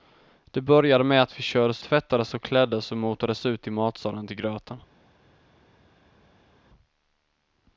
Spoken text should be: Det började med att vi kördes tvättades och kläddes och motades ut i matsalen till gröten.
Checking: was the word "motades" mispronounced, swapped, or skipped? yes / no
no